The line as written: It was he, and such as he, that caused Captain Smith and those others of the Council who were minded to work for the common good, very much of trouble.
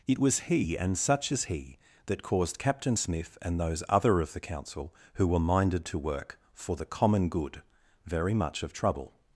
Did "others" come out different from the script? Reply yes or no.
yes